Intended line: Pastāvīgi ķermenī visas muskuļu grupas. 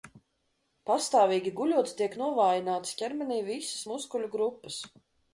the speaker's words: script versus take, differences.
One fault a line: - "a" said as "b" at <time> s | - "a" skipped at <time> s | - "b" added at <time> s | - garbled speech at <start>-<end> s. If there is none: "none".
- "guļot tiek novājinātas" added at 1.6 s